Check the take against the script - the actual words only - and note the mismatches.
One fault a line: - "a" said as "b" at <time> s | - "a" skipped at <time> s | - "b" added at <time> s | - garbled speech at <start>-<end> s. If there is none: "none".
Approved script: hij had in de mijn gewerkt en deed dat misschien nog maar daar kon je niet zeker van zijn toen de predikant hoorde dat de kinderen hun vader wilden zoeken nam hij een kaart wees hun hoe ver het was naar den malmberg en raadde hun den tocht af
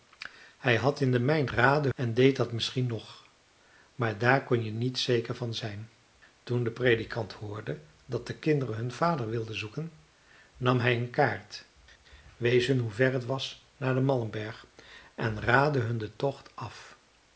- "gewerkt" said as "raadde" at 1.5 s